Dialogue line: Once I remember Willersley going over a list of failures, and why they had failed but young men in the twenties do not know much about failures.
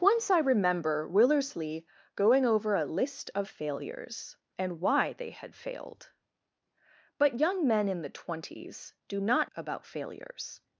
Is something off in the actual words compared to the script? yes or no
yes